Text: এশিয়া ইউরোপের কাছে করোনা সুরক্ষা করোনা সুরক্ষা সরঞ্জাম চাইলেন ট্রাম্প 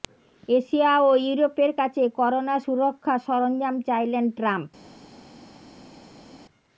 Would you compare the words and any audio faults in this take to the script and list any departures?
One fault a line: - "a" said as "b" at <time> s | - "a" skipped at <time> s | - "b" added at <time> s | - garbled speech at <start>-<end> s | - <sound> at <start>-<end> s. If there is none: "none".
- "ও" added at 1.0 s
- "করোনা সুরক্ষা" skipped at 3.1 s